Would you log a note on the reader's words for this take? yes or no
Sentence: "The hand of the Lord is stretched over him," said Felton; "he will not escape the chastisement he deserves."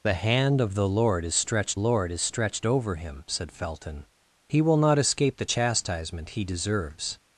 yes